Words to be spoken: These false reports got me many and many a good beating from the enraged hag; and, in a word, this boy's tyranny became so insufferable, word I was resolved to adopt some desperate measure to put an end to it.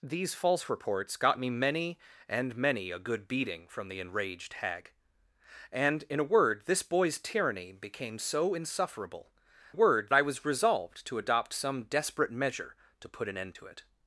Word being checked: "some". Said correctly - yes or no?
yes